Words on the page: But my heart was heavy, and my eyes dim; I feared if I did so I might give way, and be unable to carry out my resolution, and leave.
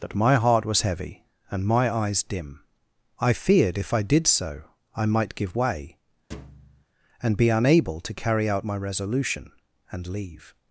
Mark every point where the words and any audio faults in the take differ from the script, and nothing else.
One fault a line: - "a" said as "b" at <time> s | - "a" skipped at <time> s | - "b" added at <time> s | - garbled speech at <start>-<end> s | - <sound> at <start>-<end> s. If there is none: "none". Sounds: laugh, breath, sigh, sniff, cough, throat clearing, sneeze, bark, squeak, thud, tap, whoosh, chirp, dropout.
- "But" said as "That" at 0.0 s
- thud at 6.3-6.8 s